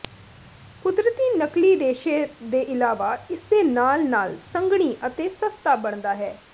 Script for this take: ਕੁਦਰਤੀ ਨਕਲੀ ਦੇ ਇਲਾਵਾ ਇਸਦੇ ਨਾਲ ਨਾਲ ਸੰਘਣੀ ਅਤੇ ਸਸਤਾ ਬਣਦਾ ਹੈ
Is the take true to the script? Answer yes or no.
no